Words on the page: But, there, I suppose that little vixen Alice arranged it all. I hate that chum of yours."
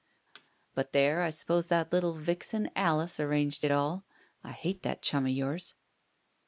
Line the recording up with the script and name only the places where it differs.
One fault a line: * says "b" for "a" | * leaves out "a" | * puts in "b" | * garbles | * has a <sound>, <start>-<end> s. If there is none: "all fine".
* has a thud, 0.3-0.5 s